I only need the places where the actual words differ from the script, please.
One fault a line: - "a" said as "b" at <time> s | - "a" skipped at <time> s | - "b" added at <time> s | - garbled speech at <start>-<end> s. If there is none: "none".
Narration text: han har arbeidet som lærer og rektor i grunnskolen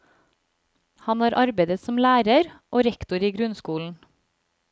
none